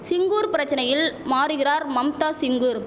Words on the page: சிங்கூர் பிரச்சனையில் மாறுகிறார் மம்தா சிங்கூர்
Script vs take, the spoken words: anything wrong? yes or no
no